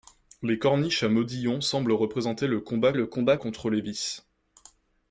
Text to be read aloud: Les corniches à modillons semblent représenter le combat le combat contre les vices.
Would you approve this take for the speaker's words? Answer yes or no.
yes